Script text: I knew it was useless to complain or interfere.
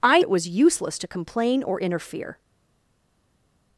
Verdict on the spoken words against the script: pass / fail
fail